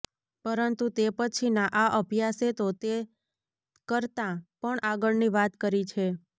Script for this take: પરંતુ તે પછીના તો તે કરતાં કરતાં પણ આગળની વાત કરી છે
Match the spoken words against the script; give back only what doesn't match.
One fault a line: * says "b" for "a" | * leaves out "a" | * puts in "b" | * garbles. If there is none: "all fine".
* puts in "આ અભ્યાસે"
* leaves out "કરતાં"